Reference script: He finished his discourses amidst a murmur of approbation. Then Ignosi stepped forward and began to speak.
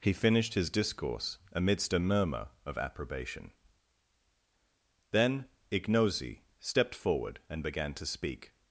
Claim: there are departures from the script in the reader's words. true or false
true